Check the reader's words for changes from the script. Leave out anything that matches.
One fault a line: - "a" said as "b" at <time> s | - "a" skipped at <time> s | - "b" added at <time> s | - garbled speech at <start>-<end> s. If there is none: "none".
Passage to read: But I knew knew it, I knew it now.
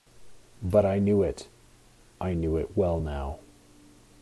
- "knew" skipped at 1.2 s
- "well" added at 2.8 s